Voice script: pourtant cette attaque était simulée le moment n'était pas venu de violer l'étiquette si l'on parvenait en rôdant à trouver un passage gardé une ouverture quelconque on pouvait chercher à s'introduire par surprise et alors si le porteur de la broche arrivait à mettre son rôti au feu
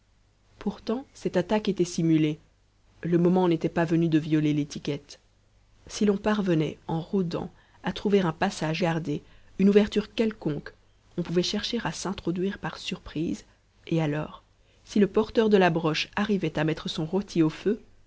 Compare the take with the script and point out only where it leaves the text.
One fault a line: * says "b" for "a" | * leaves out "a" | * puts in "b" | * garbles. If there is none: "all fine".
all fine